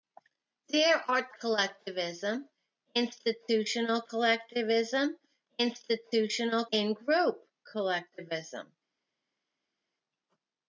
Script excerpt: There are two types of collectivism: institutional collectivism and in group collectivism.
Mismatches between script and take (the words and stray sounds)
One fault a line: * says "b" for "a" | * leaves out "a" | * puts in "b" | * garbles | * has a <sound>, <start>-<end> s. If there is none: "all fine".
* leaves out "two types of"
* says "institutional" for "and"